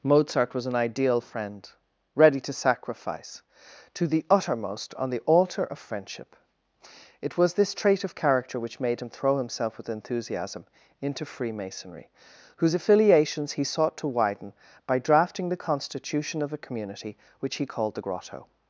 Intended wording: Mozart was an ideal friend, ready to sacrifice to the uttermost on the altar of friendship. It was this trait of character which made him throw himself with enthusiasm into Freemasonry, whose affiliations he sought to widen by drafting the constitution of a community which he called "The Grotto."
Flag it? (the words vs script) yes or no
no